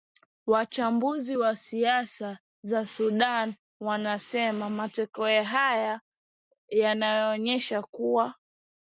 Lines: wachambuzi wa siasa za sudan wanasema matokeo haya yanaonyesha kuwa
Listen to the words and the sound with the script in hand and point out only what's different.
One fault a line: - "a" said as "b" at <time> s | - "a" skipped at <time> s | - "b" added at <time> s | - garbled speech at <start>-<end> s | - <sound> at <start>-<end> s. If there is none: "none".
none